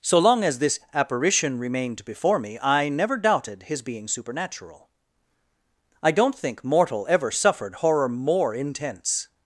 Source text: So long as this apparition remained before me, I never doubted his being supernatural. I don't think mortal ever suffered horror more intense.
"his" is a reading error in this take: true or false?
false